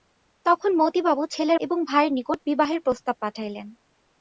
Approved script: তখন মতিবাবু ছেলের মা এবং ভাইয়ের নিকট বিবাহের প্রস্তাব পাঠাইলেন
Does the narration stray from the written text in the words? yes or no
yes